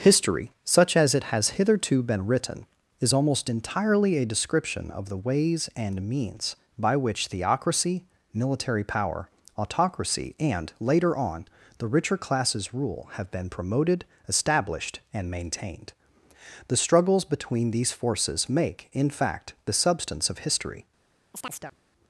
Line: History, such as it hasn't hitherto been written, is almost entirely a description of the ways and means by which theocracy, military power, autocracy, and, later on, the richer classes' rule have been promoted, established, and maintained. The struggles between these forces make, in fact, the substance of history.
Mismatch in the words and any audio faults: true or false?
true